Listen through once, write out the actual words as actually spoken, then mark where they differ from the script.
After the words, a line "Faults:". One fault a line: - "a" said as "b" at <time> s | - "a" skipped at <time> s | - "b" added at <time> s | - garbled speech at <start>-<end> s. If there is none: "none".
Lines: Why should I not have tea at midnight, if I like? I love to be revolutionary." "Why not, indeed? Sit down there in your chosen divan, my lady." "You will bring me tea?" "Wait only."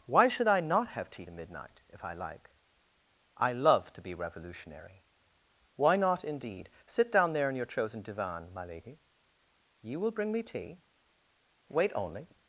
Why should I not have tea to midnight, if I like? I love to be revolutionary." "Why not, indeed? Sit down there in your chosen divan, my lady." "You will bring me tea?" "Wait only."
Faults:
- "at" said as "to" at 1.3 s